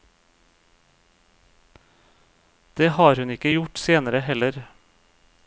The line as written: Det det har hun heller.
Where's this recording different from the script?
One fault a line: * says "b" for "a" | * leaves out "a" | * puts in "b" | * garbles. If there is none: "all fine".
* leaves out "det"
* puts in "ikke gjort senere"